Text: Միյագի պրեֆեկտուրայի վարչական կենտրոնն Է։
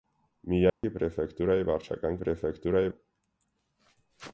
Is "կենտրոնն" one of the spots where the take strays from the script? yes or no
yes